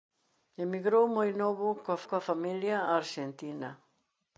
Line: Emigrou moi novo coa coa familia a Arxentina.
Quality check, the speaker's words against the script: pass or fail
pass